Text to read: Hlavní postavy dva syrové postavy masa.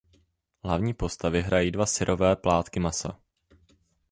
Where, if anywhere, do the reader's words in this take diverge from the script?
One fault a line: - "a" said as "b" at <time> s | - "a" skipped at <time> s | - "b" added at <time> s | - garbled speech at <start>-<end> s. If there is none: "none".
- "hrají" added at 1.4 s
- "postavy" said as "plátky" at 2.4 s